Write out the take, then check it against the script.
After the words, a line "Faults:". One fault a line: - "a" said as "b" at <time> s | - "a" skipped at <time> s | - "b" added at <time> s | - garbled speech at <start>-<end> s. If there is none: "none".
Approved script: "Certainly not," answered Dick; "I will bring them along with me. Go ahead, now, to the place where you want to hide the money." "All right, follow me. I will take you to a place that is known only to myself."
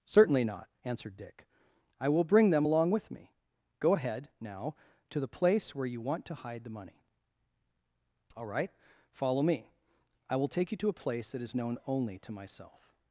"Certainly not," answered Dick; "I will bring them along with me. Go ahead, now, to the place where you want to hide the money." "All right, follow me. I will take you to a place that is known only to myself."
Faults:
none